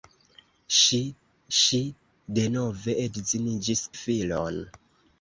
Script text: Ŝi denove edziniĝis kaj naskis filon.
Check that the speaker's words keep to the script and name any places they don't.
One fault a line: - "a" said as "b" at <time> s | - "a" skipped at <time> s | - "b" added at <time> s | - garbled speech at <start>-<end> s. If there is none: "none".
- "ŝi" added at 1.6 s
- "kaj naskis" skipped at 3.8 s